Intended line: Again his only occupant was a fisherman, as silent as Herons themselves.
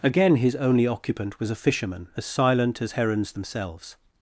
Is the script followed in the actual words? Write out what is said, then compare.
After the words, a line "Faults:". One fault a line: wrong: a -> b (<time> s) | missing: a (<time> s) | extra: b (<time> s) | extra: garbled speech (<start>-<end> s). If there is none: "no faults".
Again his only occupant was a fisherman, as silent as Herons themselves.
Faults:
no faults